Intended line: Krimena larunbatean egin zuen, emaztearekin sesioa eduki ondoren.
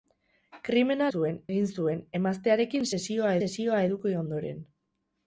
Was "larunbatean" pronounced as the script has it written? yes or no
no